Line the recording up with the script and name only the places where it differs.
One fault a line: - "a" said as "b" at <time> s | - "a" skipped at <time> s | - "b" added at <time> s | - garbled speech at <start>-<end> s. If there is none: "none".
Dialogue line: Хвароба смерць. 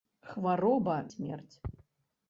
none